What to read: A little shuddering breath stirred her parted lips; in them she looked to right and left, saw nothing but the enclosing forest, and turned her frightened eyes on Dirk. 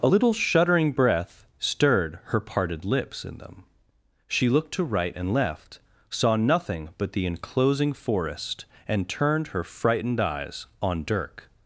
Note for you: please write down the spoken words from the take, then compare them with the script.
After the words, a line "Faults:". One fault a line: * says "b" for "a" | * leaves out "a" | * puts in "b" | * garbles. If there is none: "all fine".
A little shuddering breath stirred her parted lips; in them she looked to right and left, saw nothing but the enclosing forest, and turned her frightened eyes on Dirk.
Faults:
all fine